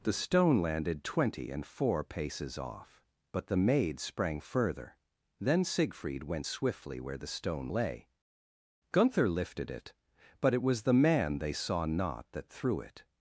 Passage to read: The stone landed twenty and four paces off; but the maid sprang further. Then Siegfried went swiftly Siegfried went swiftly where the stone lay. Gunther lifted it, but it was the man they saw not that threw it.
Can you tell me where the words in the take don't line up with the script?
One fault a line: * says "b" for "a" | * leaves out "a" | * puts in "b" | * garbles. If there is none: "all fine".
* leaves out "Siegfried went swiftly"